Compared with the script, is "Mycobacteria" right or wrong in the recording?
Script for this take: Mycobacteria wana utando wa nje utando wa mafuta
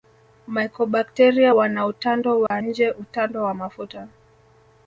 right